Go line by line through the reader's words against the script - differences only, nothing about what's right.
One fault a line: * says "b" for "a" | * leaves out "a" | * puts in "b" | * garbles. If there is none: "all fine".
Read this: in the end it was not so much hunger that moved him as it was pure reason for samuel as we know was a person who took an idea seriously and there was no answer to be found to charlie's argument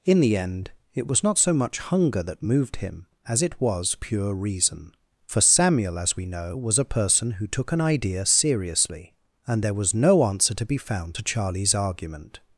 all fine